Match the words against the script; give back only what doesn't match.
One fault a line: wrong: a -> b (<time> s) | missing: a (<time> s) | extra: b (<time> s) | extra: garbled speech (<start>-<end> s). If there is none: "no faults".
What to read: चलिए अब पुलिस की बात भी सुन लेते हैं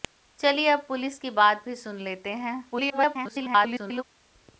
extra: garbled speech (2.7-4.0 s)